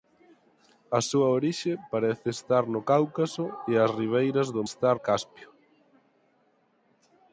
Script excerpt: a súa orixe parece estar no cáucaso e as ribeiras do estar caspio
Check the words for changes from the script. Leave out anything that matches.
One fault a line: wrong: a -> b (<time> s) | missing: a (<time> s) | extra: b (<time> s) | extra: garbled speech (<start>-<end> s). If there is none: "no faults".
no faults